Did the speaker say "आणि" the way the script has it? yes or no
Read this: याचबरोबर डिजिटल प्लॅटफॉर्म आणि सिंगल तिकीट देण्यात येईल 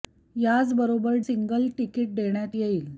no